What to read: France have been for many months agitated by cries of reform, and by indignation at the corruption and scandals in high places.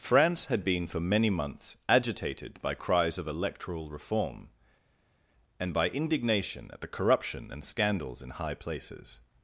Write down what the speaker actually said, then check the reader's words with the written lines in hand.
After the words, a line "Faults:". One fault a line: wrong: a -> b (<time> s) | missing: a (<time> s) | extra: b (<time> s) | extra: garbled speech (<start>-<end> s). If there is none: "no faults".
France had been for many months agitated by cries of electoral reform, and by indignation at the corruption and scandals in high places.
Faults:
wrong: have -> had (0.5 s)
extra: electoral (3.3 s)